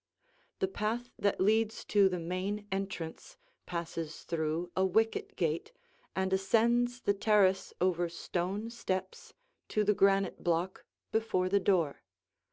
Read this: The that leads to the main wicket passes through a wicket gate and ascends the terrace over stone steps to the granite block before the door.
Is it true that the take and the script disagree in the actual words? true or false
true